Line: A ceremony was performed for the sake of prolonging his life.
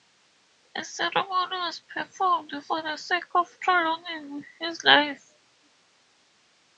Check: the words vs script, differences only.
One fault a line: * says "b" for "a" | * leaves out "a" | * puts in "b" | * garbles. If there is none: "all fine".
all fine